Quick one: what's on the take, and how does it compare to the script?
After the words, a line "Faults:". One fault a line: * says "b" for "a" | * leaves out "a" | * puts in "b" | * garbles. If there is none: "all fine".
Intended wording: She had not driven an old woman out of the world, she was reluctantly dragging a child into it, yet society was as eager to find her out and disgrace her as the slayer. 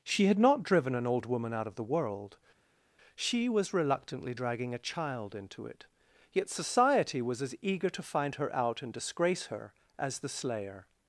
She had not driven an old woman out of the world, she was reluctantly dragging a child into it, yet society was as eager to find her out and disgrace her as the slayer.
Faults:
all fine